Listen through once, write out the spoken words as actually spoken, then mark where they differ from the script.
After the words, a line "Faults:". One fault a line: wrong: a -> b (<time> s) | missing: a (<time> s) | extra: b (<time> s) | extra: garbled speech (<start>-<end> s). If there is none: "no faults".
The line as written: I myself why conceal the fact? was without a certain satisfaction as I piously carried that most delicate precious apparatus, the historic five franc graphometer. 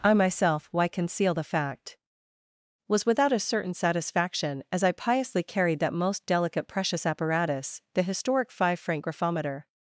I myself why conceal the fact? was without a certain satisfaction as I piously carried that most delicate precious apparatus, the historic five franc graphometer.
Faults:
no faults